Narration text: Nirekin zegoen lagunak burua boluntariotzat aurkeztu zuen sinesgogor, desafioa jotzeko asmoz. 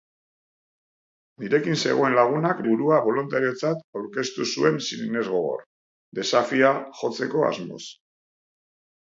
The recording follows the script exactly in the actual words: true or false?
true